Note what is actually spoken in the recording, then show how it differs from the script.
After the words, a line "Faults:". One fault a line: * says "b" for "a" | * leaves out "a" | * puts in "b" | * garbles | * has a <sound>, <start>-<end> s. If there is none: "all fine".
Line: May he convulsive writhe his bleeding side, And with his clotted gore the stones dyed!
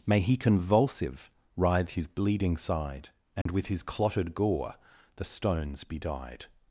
May he convulsive writhe his bleeding side, And with his clotted gore the stones be dyed!
Faults:
* has a dropout, 3.4-3.5 s
* puts in "be"